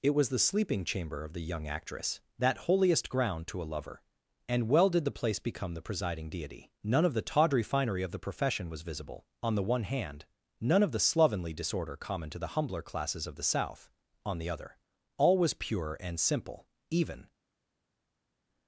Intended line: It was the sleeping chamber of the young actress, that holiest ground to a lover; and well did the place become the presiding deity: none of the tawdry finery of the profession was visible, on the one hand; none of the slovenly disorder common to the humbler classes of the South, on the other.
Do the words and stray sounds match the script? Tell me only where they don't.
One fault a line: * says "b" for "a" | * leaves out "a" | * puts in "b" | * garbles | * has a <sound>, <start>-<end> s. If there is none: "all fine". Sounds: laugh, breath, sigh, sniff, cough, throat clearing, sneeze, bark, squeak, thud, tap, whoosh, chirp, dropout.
* puts in "All was pure and simple even"